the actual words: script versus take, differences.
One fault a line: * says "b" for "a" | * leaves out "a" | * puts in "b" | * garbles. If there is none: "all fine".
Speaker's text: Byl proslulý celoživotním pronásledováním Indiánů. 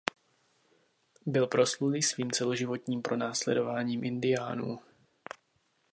* puts in "svým"